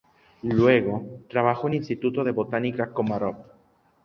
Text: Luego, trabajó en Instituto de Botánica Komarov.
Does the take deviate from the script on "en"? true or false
false